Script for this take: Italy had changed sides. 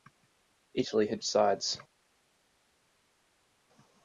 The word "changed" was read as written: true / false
false